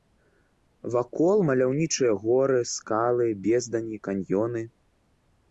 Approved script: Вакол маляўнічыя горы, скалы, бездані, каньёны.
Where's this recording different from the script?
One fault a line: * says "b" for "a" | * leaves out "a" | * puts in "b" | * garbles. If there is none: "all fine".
all fine